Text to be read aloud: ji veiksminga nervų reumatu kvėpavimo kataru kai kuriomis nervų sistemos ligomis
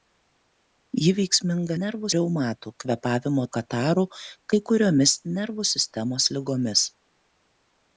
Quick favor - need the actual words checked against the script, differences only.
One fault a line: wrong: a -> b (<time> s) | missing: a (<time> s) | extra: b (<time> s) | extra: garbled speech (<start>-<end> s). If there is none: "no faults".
no faults